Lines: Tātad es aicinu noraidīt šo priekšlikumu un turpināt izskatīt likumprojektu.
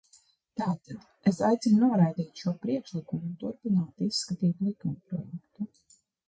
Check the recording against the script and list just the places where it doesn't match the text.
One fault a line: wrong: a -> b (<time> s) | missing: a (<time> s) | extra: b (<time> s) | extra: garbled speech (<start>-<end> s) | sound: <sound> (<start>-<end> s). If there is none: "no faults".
no faults